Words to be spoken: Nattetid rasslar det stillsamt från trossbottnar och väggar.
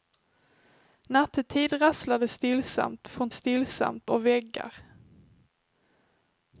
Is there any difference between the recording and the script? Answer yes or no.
yes